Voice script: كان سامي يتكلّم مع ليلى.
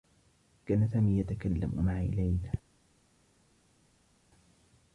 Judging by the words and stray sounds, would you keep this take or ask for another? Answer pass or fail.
pass